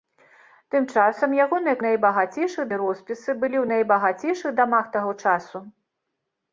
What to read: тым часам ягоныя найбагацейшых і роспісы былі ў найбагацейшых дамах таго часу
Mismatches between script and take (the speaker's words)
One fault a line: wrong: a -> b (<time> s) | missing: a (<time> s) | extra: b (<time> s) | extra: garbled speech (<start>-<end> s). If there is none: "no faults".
no faults